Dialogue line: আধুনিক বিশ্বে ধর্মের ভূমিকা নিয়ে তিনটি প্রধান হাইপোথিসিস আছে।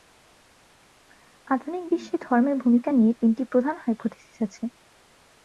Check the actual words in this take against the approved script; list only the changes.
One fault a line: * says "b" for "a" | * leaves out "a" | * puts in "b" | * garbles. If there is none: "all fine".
all fine